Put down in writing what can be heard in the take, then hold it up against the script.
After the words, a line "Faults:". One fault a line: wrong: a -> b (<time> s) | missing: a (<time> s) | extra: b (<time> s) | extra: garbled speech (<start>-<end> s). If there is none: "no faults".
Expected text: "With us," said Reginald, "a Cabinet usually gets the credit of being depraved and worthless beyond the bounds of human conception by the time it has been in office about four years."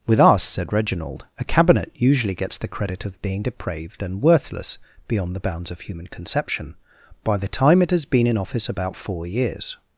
"With us," said Reginald, "a Cabinet usually gets the credit of being depraved and worthless beyond the bounds of human conception by the time it has been in office about four years."
Faults:
no faults